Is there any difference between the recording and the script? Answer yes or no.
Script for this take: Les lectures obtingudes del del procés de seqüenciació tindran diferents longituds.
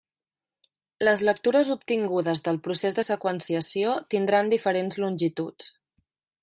yes